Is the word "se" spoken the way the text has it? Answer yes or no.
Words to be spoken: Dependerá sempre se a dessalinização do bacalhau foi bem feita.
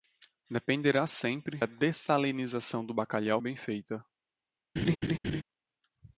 no